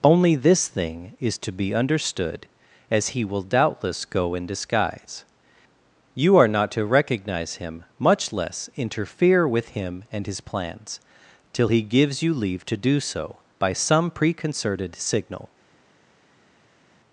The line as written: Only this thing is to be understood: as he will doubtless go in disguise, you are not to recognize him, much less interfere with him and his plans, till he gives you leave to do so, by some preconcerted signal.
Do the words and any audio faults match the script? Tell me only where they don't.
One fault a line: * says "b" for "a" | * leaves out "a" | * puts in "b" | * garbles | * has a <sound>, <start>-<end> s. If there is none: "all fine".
all fine